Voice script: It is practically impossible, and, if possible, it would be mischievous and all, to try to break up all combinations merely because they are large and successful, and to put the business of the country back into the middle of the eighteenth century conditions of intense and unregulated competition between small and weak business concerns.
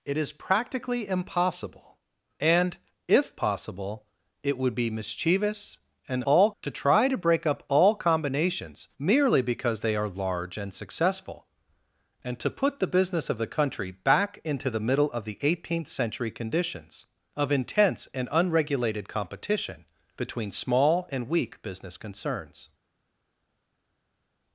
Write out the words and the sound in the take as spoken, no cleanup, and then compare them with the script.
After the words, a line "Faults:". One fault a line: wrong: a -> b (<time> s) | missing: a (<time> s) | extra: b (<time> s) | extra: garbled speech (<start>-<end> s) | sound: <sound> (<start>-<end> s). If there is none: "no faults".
It is practically impossible, and, if possible, it would be mischievous and all, to try to break up all combinations merely because they are large and successful, and to put the business of the country back into the middle of the eighteenth century conditions of intense and unregulated competition between small and weak business concerns.
Faults:
no faults